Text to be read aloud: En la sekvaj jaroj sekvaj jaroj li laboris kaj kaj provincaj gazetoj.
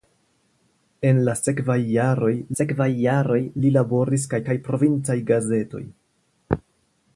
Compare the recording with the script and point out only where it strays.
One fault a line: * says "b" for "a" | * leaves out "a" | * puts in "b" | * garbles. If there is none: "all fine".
all fine